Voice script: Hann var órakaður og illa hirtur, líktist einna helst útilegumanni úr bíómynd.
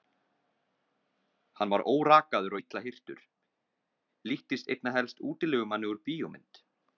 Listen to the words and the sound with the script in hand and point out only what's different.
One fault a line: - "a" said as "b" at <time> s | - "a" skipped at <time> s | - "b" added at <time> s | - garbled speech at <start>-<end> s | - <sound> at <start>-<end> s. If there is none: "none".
none